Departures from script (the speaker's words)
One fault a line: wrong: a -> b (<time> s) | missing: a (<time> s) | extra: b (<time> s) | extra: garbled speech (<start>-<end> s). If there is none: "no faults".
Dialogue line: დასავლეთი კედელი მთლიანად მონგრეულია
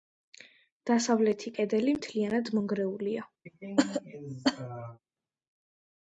no faults